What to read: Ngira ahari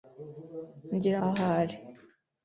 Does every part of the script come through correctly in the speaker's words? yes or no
yes